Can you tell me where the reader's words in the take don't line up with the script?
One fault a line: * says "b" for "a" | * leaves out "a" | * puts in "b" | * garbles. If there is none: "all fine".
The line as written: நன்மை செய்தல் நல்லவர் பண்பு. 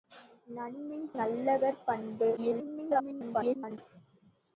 * leaves out "செய்தல்"
* garbles